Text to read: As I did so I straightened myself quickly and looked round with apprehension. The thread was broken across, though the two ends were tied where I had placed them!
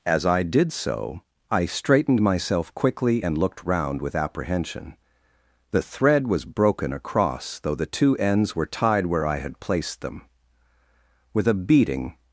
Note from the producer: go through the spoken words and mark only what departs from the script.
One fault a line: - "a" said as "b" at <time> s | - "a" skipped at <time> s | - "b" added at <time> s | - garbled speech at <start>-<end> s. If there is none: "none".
- "With a beating" added at 11.3 s